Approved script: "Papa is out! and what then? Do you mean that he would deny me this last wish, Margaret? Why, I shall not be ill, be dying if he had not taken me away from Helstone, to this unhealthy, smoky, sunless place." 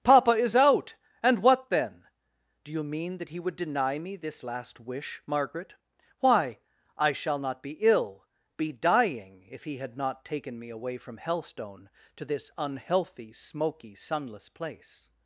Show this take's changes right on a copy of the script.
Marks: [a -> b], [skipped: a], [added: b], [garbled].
"Papa is out! and what then? Do you mean that he would deny me this last wish, Margaret? Why, I shall not be ill, be dying if he had not taken me away from Helstone, to this unhealthy, smoky, sunless place."